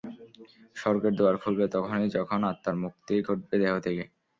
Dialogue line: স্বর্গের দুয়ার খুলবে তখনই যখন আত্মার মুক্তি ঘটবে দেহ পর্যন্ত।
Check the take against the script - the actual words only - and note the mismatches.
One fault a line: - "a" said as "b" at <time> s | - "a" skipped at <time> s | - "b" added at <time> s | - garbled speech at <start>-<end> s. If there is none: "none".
- "পর্যন্ত" said as "থেকে" at 3.8 s